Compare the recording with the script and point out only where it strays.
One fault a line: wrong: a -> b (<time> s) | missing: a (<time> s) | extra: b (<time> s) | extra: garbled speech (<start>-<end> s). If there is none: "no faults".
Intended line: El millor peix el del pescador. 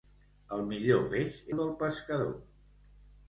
no faults